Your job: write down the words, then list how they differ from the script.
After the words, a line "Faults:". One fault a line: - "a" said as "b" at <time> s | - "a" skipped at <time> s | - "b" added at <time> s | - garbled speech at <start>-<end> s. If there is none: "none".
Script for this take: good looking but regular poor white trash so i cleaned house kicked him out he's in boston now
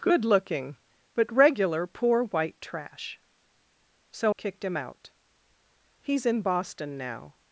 good looking but regular poor white trash so kicked him out he's in boston now
Faults:
- "i cleaned house" skipped at 4.3 s